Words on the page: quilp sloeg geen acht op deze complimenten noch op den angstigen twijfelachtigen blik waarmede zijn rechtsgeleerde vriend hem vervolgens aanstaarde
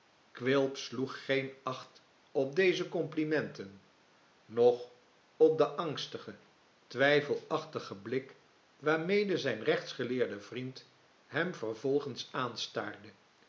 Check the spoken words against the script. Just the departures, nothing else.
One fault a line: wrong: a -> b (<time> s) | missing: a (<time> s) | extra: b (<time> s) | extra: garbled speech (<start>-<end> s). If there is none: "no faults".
no faults